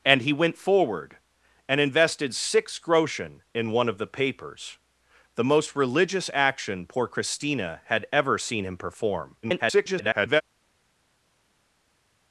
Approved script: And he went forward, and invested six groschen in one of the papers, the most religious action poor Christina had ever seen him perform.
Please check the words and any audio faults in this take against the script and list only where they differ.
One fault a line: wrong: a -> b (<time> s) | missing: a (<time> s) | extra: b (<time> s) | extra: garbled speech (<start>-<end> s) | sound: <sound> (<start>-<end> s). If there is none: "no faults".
extra: garbled speech (9.4-10.4 s)